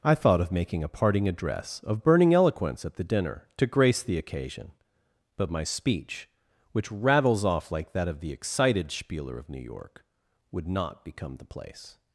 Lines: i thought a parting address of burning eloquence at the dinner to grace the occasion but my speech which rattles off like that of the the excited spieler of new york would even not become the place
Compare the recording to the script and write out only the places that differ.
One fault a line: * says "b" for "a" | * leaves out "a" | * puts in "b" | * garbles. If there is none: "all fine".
* puts in "of making"
* leaves out "the"
* leaves out "even"